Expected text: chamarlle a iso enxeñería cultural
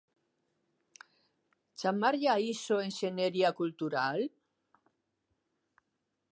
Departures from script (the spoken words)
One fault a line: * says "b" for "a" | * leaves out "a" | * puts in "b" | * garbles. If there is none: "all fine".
all fine